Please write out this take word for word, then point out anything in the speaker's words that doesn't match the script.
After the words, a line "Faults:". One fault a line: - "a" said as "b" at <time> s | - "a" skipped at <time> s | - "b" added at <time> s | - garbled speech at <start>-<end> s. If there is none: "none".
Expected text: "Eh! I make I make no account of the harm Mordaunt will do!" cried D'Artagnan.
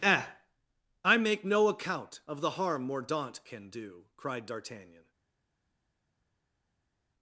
"Eh! I make no account of the harm Mordaunt can do!" cried D'Artagnan.
Faults:
- "I make" skipped at 1.4 s
- "will" said as "can" at 3.5 s